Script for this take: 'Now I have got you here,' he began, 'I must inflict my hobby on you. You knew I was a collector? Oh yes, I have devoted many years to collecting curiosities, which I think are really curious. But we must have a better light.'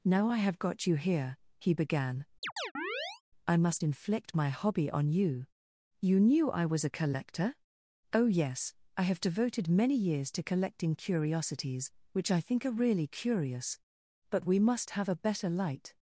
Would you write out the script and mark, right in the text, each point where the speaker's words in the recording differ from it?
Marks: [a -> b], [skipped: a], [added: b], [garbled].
'Now I have got you here,' he began, 'I must inflict my hobby on you. You knew I was a collector? Oh yes, I have devoted many years to collecting curiosities, which I think are really curious. But we must have a better light.'